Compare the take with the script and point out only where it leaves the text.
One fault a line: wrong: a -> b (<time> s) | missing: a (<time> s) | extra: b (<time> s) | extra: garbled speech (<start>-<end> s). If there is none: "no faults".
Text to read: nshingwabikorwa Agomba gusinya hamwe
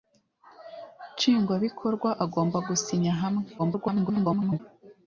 extra: garbled speech (3.6-4.6 s)